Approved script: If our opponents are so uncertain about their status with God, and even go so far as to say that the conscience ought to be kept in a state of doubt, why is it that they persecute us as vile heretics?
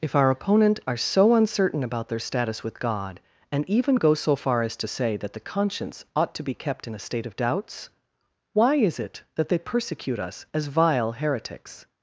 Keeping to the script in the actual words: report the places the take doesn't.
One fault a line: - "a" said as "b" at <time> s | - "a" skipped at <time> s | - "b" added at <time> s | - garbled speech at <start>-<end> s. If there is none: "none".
- "opponents" said as "opponent" at 0.3 s
- "doubt" said as "doubts" at 7.3 s